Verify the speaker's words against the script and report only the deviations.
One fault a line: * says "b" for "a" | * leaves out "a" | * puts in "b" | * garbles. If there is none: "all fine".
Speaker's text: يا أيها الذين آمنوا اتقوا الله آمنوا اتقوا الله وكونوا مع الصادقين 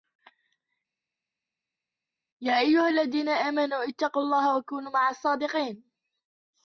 * leaves out "آمنوا اتقوا الله"